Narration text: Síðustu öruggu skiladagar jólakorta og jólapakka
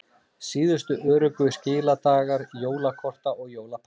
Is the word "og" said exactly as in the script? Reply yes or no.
yes